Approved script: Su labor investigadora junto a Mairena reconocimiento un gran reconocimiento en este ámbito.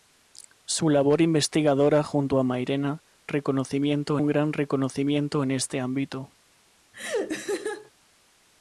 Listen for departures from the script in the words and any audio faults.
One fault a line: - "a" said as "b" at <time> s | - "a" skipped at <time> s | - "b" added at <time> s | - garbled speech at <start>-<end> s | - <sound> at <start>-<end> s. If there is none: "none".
- laugh at 6.9-7.9 s